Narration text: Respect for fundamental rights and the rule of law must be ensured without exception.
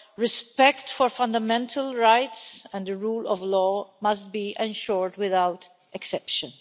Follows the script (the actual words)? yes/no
yes